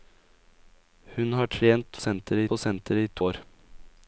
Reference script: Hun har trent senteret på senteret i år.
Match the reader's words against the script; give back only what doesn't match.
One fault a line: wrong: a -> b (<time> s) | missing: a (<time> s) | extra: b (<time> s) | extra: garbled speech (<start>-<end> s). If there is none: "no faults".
no faults